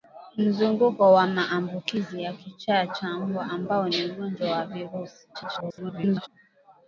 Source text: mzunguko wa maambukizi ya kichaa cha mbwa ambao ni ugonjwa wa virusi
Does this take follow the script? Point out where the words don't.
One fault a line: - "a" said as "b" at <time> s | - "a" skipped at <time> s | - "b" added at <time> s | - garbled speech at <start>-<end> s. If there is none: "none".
- garbled speech at 5.3-6.3 s